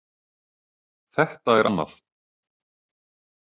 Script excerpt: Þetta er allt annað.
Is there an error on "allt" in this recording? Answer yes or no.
yes